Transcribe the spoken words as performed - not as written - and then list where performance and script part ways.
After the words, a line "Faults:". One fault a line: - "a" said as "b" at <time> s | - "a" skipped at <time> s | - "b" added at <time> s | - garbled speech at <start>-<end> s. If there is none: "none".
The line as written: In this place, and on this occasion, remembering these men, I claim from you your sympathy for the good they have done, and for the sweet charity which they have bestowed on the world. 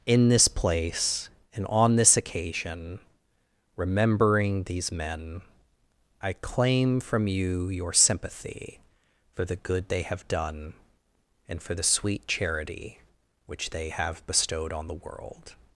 In this place, and on this occasion, remembering these men, I claim from you your sympathy for the good they have done, and for the sweet charity which they have bestowed on the world.
Faults:
none